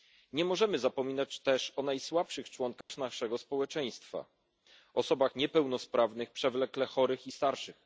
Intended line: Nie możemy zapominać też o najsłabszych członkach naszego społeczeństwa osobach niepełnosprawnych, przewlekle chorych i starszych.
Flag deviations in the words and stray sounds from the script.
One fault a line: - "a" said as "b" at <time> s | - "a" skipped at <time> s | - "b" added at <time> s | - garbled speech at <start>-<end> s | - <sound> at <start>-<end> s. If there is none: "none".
- dropout at 2.8-2.9 s